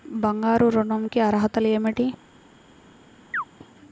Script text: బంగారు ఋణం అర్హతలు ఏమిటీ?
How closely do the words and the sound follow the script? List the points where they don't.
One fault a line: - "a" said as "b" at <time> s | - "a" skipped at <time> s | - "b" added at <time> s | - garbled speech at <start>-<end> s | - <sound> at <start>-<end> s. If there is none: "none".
- "కి" added at 1.0 s
- chirp at 3.3-3.4 s